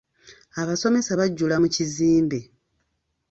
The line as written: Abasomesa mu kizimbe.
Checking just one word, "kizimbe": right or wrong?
right